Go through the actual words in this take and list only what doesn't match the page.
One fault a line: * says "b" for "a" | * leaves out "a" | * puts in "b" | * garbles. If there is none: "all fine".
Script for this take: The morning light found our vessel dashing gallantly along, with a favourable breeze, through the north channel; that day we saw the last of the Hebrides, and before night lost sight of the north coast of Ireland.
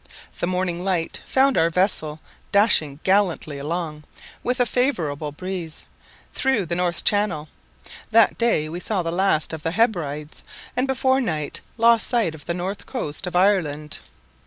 all fine